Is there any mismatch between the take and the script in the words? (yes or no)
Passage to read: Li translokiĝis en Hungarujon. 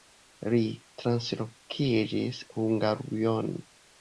yes